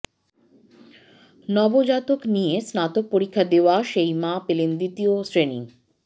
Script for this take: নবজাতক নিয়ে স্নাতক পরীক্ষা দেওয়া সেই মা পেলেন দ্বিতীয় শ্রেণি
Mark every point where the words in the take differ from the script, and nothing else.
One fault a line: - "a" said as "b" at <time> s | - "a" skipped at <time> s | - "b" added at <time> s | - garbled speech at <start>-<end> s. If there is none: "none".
none